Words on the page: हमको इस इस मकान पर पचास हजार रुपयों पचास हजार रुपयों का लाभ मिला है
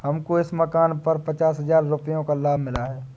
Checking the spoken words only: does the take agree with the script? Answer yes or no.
no